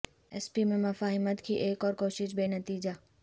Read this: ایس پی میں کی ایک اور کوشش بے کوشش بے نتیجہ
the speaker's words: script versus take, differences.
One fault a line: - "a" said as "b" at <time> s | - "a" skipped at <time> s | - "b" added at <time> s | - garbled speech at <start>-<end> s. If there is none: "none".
- "مفاہمت" added at 0.8 s
- "کوشش بے" skipped at 2.5 s